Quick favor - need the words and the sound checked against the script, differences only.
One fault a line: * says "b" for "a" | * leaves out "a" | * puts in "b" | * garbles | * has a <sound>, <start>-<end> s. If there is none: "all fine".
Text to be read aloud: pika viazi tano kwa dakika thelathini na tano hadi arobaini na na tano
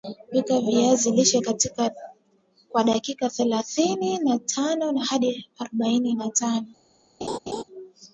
* says "lishe" for "tano"
* leaves out "na"
* has a laugh, 7.2-7.6 s